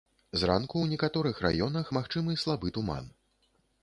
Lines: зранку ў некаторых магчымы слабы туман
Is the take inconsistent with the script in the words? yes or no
yes